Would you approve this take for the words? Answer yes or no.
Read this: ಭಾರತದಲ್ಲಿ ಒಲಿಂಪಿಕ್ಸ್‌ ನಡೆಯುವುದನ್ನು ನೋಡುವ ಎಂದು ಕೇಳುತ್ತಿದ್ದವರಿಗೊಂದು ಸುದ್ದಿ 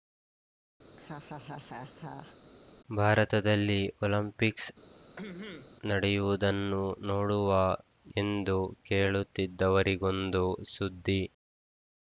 yes